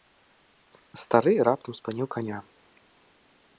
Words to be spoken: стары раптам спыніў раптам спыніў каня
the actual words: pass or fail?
fail